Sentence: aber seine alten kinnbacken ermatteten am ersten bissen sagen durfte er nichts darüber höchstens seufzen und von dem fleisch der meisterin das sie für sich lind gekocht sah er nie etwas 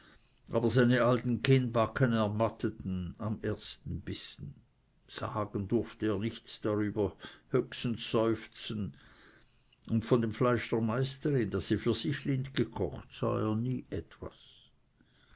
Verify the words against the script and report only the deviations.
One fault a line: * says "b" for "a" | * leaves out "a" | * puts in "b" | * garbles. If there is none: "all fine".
all fine